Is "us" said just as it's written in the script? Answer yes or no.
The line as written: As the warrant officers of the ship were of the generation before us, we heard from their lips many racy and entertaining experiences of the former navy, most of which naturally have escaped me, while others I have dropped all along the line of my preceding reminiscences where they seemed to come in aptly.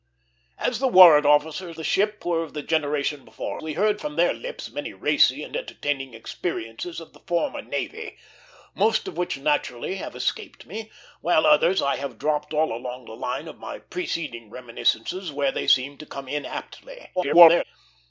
no